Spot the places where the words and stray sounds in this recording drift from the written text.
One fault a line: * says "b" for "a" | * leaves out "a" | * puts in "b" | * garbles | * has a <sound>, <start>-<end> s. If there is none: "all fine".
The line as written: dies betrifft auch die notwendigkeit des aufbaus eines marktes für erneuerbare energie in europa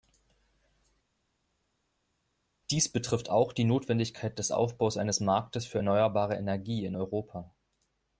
all fine